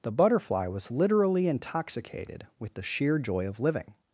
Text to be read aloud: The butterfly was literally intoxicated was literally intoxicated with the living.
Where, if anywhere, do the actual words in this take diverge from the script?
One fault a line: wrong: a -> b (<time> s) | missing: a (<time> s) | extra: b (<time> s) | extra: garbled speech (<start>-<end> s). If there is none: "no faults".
wrong: was literally intoxicated with the -> with the sheer joy of (2.6 s)